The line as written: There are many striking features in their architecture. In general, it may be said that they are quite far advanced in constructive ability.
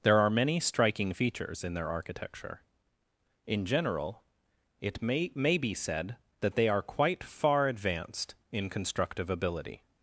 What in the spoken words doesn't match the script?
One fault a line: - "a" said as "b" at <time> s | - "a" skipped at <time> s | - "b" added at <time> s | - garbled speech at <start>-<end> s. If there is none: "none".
- "may" added at 5.3 s